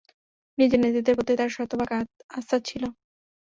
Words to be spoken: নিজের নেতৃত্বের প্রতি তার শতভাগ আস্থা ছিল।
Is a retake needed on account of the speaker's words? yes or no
no